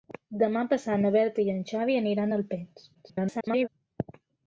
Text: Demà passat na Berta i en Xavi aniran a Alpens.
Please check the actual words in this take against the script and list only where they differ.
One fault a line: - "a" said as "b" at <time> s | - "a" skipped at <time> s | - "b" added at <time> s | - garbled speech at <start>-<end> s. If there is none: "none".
- garbled speech at 2.9-3.7 s